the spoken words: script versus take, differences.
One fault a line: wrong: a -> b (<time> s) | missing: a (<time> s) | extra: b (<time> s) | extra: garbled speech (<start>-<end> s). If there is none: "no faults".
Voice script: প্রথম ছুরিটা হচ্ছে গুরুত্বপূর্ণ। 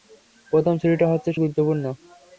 no faults